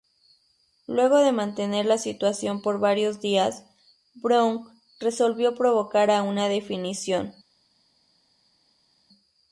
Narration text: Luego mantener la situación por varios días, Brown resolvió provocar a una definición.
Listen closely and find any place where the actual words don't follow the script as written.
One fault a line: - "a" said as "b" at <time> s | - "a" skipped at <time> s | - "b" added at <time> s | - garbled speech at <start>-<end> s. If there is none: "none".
- "de" added at 1.2 s